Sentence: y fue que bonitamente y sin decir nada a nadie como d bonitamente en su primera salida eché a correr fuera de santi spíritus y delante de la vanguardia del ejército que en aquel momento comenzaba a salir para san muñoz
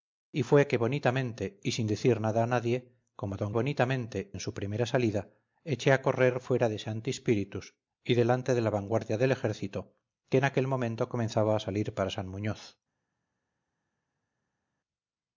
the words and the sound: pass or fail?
pass